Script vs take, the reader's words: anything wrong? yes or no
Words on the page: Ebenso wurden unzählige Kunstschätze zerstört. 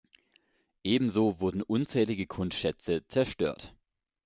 no